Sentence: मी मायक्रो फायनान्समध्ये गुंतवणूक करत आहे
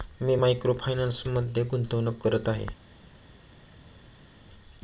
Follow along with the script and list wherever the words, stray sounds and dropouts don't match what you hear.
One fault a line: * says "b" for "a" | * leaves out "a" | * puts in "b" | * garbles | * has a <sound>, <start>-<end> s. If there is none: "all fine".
all fine